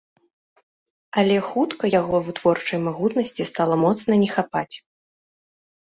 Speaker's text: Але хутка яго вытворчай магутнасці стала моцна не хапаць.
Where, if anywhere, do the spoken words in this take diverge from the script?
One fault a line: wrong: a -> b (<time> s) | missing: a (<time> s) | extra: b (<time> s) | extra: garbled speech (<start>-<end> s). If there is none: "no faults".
no faults